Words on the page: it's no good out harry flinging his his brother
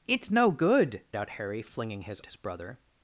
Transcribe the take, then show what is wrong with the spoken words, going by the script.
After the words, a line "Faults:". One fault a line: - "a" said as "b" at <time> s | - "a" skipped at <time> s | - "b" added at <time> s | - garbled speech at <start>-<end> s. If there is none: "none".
it's no good out harry flinging his his brother
Faults:
none